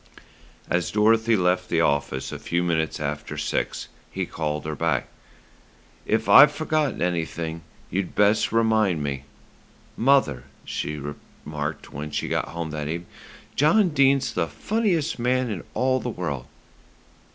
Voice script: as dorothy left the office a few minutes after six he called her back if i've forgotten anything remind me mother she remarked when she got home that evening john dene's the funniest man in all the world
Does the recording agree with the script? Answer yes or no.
no